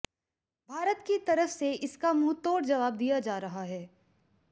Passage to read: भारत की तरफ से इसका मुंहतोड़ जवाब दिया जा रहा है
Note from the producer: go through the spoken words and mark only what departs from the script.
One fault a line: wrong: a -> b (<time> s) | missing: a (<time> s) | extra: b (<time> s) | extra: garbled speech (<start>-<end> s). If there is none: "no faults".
no faults